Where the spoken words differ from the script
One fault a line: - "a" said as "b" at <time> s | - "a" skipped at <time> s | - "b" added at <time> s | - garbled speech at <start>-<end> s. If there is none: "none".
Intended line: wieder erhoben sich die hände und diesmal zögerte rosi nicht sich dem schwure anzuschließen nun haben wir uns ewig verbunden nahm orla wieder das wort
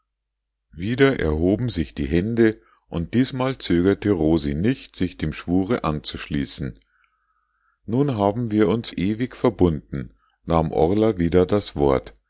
none